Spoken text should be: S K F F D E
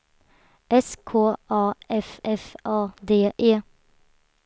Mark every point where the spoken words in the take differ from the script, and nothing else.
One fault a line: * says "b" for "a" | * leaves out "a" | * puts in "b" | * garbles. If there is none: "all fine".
* puts in "A"
* puts in "A"